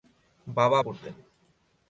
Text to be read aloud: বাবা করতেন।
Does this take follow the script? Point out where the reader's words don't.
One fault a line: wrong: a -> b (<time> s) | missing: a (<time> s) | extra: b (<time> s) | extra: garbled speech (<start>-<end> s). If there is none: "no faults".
no faults